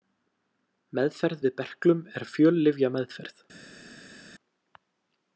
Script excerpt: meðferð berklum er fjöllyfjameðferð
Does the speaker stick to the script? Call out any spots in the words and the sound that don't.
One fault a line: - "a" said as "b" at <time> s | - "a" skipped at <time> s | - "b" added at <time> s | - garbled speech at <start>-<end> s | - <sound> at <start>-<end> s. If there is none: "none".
- "við" added at 1.4 s